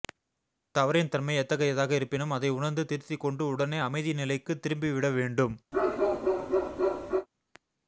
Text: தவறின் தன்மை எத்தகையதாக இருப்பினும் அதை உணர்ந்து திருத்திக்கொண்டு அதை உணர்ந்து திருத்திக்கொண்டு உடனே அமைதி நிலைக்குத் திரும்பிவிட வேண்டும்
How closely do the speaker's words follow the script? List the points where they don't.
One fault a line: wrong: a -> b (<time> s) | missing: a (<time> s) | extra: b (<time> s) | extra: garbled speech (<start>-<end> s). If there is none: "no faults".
missing: அதை உணர்ந்து திருத்திக்கொண்டு (3.4 s)